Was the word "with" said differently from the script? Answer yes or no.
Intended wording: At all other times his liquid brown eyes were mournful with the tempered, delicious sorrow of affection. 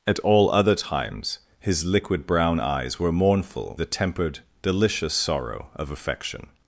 yes